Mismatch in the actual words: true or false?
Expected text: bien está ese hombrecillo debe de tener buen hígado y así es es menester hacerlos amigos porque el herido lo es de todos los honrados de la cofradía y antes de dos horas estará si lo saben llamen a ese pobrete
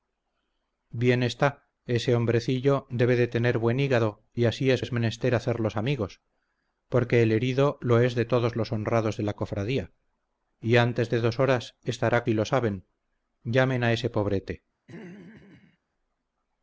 false